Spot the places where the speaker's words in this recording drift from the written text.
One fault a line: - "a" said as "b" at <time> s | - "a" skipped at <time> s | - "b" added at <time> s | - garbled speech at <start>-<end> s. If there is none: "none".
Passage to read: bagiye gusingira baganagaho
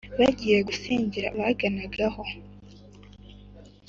none